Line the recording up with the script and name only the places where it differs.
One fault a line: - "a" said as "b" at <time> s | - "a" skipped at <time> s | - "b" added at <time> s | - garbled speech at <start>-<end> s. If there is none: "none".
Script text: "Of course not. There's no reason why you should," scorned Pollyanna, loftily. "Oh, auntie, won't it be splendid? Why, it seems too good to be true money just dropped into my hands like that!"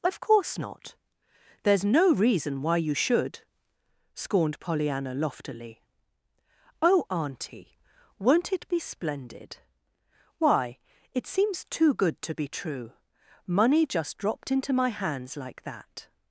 none